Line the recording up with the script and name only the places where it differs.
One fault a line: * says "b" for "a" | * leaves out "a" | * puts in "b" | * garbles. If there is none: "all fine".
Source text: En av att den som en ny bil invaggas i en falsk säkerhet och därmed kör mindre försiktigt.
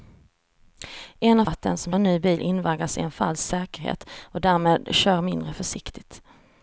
all fine